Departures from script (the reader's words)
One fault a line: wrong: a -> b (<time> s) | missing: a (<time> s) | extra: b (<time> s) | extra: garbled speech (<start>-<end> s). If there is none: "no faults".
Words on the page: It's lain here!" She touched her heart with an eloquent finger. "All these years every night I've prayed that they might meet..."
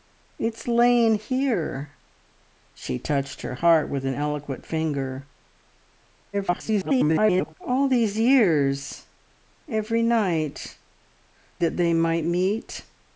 extra: garbled speech (6.3-7.5 s)
missing: I've prayed (10.8 s)